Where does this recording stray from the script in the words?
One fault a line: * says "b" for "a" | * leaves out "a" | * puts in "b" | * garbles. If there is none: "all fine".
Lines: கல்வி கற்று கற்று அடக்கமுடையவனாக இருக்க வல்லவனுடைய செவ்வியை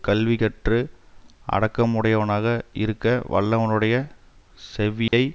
* leaves out "கற்று"